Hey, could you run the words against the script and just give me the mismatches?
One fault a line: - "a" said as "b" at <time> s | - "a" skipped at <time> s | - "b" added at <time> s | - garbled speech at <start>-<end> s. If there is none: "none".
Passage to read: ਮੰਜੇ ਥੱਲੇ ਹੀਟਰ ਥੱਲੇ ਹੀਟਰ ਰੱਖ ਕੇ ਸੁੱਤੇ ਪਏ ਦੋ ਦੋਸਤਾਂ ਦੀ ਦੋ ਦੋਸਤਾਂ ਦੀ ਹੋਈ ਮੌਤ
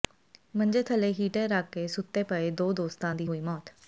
- "ਥੱਲੇ ਹੀਟਰ" skipped at 1.5 s
- "ਦੋ ਦੋਸਤਾਂ ਦੀ" skipped at 3.3 s